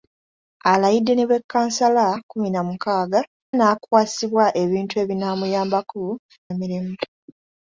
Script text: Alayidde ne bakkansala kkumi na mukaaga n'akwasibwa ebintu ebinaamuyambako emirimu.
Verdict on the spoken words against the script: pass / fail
pass